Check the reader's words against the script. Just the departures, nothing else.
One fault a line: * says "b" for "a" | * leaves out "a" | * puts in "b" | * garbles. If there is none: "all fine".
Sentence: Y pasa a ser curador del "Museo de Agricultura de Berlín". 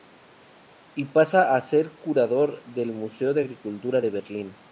all fine